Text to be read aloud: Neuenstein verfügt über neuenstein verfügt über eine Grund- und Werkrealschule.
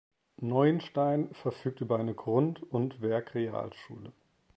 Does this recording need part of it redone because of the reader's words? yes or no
yes